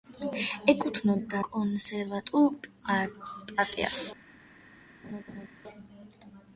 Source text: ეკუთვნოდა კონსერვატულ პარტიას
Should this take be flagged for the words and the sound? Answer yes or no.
yes